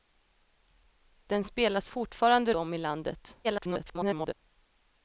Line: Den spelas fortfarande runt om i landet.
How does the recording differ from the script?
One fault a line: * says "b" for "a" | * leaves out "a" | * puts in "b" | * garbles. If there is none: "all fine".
* leaves out "runt"
* garbles